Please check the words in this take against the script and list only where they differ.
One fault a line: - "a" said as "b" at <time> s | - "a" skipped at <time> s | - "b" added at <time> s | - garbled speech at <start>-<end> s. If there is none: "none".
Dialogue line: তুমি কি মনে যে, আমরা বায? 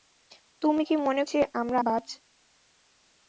none